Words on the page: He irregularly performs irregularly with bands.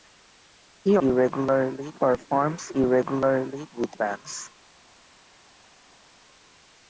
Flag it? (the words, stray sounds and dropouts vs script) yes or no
no